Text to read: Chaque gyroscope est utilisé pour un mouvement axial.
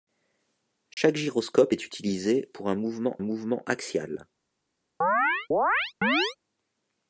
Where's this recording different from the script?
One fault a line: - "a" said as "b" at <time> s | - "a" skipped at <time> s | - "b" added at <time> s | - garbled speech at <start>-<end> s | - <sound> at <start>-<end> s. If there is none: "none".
- dropout at 0.9-1.0 s
- "mouvement" added at 3.2 s
- chirp at 5.0-6.4 s